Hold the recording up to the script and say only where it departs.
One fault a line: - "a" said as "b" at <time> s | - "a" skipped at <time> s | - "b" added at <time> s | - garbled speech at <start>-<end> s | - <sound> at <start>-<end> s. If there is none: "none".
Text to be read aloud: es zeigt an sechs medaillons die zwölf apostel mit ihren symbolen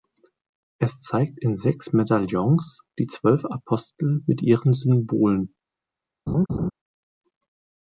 - "an" said as "in" at 1.4 s
- laugh at 6.3-6.7 s